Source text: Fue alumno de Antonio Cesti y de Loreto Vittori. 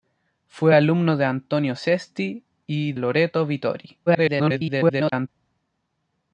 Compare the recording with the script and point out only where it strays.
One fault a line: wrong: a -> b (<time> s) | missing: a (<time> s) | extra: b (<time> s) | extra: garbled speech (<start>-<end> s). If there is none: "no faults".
missing: de (2.9 s)
extra: garbled speech (4.1-5.3 s)